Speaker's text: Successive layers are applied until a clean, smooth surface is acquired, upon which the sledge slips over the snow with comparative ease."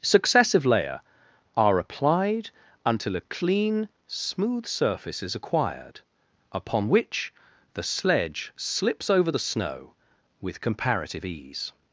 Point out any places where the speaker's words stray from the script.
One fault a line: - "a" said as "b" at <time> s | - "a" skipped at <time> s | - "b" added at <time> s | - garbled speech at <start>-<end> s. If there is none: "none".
- "layers" said as "layer" at 0.7 s